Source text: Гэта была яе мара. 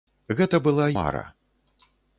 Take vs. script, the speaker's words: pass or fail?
fail